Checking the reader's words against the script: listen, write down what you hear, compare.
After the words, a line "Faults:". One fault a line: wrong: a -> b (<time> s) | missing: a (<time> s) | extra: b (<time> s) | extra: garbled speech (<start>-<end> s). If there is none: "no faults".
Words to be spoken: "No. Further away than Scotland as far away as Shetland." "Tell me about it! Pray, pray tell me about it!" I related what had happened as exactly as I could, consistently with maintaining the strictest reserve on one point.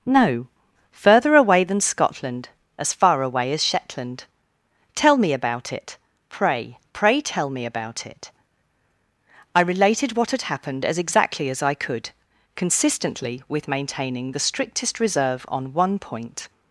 "No. Further away than Scotland as far away as Shetland." "Tell me about it! Pray, pray tell me about it!" I related what had happened as exactly as I could, consistently with maintaining the strictest reserve on one point.
Faults:
no faults